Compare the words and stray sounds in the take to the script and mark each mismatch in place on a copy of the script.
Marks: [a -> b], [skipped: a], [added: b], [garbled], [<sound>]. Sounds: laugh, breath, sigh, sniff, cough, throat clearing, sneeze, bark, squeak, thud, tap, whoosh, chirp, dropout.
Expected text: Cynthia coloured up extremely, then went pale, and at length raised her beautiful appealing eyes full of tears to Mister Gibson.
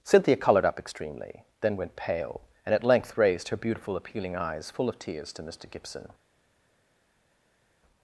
Cynthia coloured up extremely, then went pale, and at length raised her beautiful appealing eyes full of tears to Mister Gibson.